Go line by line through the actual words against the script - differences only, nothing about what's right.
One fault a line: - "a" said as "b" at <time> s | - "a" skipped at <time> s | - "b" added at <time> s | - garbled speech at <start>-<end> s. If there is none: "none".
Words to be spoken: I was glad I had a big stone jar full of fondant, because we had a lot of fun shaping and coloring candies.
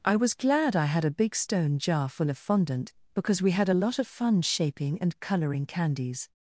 none